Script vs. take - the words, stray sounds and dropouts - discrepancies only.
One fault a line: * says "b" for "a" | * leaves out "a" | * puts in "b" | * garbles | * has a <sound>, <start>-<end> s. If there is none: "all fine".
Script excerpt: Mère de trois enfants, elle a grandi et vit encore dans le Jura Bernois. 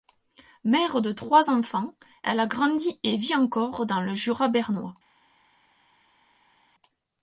all fine